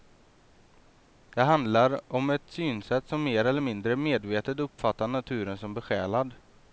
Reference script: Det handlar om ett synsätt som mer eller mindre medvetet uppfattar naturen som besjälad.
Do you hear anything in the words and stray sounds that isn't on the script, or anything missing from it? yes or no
no